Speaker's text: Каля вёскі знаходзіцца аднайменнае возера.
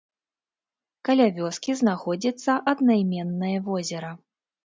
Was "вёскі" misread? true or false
false